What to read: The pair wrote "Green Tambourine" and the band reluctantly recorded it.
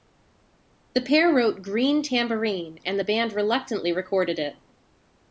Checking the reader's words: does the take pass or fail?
pass